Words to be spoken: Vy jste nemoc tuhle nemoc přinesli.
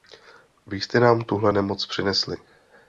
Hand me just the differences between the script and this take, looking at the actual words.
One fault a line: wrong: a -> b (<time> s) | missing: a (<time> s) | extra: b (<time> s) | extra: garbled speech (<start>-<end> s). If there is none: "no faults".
wrong: nemoc -> nám (1.0 s)